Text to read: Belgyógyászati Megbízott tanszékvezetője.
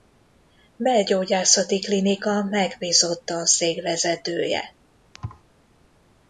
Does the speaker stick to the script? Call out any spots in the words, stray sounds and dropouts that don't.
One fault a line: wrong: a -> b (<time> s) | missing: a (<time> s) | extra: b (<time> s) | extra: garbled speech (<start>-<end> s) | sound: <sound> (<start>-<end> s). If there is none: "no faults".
extra: Klinika (1.8 s)
sound: thud (5.1-5.4 s)